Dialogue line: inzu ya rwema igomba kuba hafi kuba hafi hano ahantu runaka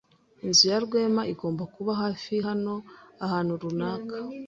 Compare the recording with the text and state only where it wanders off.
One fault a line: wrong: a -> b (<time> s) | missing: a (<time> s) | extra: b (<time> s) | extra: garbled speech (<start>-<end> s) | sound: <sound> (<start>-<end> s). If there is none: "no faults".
missing: kuba hafi (2.3 s)